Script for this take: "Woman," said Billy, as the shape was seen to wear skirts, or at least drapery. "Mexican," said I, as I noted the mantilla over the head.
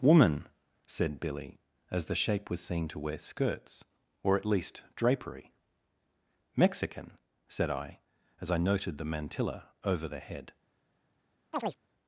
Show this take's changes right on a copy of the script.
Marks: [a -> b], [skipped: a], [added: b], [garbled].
"Woman," said Billy, as the shape was seen to wear skirts, or at least drapery. "Mexican," said I, as I noted the mantilla over the head.